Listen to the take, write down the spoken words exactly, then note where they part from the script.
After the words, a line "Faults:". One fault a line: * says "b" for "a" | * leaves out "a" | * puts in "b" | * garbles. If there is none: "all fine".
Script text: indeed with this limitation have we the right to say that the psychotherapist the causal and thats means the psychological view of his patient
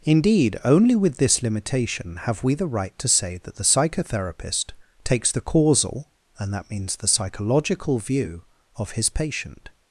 indeed only with this limitation have we the right to say that the psychotherapist takes the causal and that means the psychological view of his patient
Faults:
* puts in "only"
* puts in "takes"
* says "that" for "thats"